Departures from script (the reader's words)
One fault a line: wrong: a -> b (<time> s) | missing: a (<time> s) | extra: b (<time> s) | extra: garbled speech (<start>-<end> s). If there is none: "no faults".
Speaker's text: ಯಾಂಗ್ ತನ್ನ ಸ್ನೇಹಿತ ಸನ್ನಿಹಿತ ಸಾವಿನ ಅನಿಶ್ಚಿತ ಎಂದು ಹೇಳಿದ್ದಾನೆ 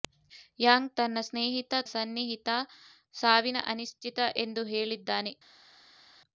no faults